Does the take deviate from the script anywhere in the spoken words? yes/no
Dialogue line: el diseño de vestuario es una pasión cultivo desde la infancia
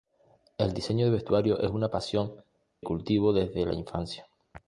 no